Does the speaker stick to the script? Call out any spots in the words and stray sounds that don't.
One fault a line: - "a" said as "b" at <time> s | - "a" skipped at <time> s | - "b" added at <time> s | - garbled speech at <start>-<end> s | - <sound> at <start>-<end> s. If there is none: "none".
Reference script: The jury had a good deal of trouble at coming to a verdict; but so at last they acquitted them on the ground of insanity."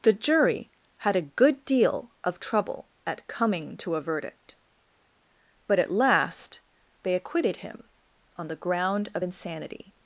- "so" skipped at 5.8 s
- "them" said as "him" at 7.6 s